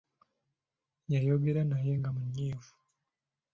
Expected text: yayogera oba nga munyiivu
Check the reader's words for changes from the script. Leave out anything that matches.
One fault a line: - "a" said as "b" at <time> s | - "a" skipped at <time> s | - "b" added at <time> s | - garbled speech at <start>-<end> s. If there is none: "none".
- "oba" said as "naye" at 1.7 s